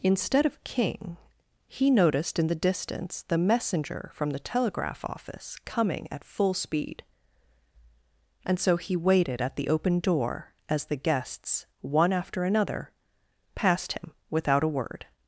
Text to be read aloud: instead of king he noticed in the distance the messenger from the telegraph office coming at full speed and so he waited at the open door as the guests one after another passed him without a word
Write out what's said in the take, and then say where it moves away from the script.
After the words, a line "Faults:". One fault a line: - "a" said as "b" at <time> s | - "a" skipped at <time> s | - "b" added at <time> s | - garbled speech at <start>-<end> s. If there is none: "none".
instead of king he noticed in the distance the messenger from the telegraph office coming at full speed and so he waited at the open door as the guests one after another passed him without a word
Faults:
none